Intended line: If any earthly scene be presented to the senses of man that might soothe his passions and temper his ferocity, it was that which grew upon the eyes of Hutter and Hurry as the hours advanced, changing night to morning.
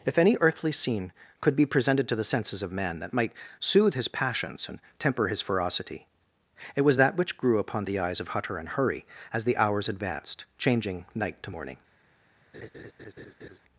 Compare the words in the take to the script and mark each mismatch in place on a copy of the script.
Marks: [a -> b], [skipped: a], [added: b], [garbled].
If any earthly scene [added: could] be presented to the senses of man that might soothe his passions and temper his ferocity, it was that which grew upon the eyes of Hutter and Hurry as the hours advanced, changing night to morning.